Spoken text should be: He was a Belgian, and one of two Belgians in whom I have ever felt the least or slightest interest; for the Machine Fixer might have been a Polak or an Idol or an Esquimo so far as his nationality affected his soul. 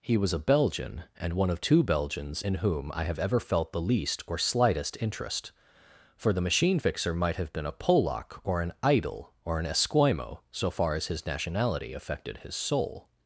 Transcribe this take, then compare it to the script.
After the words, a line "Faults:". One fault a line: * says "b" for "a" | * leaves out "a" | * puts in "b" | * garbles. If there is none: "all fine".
He was a Belgian, and one of two Belgians in whom I have ever felt the least or slightest interest; for the Machine Fixer might have been a Polak or an Idol or an Esquimo so far as his nationality affected his soul.
Faults:
all fine